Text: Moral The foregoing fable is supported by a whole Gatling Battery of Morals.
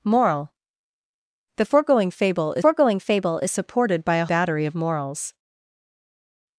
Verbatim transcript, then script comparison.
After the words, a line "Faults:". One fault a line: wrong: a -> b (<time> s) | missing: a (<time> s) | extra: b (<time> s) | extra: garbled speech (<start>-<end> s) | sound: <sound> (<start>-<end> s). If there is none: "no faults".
Moral The foregoing fable is foregoing fable is supported by a Battery of Morals.
Faults:
extra: foregoing fable is (2.6 s)
missing: whole Gatling (4.3 s)